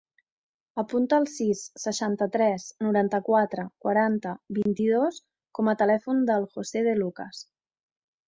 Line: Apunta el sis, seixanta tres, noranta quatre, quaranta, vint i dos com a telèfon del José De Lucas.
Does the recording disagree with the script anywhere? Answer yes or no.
no